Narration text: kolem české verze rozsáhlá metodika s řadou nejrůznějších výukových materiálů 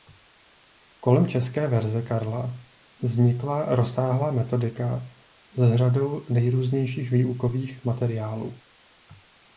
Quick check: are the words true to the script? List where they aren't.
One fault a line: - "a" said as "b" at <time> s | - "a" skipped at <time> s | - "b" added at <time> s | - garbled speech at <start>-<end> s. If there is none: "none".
- "karla vznikla" added at 2.0 s